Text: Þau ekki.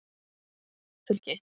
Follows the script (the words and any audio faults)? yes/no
yes